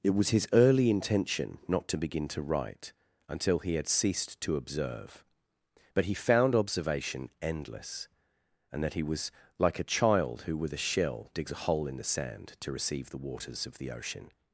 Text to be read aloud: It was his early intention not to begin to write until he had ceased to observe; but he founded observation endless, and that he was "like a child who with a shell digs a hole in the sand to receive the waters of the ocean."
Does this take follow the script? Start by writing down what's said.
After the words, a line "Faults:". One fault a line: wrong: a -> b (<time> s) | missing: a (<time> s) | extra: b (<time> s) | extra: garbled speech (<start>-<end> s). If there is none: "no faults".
It was his early intention not to begin to write until he had ceased to observe; but he found observation endless, and that he was "like a child who with a shell digs a hole in the sand to receive the waters of the ocean."
Faults:
wrong: founded -> found (6.1 s)